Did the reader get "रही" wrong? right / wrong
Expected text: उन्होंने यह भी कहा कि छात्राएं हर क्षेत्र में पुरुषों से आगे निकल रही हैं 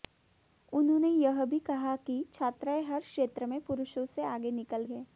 wrong